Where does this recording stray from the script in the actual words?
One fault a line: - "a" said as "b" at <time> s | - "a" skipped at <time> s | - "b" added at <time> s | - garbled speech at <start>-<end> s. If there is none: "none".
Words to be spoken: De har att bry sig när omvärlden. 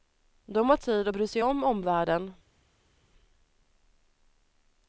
- "tid" added at 0.7 s
- "när" said as "om" at 1.4 s